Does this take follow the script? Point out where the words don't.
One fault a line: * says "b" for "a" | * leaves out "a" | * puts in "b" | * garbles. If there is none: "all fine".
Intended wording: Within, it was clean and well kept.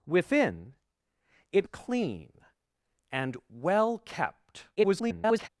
* leaves out "was"
* garbles